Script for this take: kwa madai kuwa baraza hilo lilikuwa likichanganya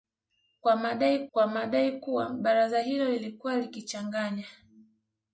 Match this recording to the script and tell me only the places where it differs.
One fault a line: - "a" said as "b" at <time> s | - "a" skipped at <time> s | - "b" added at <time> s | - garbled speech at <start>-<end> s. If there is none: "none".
- "kwa madai" added at 1.3 s